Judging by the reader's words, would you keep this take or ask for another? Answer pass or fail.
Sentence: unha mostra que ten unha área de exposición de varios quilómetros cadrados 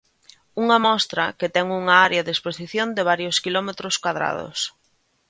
pass